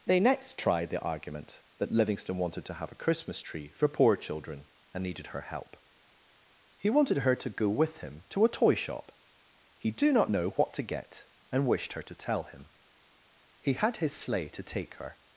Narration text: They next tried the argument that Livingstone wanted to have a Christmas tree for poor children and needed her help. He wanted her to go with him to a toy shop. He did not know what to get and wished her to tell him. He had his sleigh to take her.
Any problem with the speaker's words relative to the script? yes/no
yes